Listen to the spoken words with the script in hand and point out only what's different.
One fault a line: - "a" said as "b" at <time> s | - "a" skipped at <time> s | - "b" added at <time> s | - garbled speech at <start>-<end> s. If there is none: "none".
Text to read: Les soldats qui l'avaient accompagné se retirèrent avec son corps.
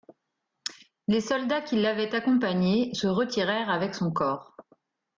none